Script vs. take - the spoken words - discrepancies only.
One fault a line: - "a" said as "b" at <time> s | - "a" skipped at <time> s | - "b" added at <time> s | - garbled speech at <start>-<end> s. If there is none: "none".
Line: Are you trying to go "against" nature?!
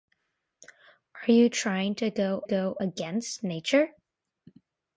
- "go" added at 2.4 s